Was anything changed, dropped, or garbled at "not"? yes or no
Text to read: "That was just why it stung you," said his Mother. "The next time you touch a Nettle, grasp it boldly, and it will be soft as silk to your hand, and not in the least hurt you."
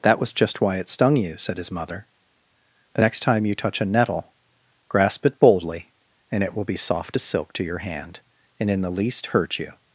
yes